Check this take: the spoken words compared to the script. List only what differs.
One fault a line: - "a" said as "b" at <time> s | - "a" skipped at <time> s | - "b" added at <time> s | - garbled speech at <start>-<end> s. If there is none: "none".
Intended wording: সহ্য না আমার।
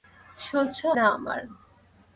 none